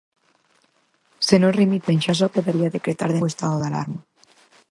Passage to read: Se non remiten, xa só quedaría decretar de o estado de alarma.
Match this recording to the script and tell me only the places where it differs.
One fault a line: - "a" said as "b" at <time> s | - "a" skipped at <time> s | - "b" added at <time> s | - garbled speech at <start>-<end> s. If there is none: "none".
none